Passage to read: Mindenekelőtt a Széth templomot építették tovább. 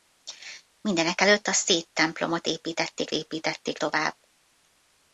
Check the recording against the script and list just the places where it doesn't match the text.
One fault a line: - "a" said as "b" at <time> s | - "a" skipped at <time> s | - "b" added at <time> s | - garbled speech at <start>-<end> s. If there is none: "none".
- "építették" added at 3.1 s